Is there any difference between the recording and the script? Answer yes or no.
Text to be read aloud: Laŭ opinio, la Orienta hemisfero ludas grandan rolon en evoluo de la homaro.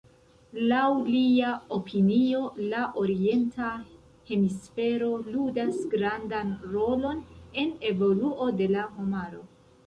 yes